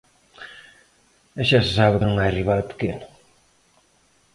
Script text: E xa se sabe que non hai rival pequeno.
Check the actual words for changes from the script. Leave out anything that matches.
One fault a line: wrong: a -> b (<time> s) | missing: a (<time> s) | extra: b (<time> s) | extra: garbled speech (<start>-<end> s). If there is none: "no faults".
no faults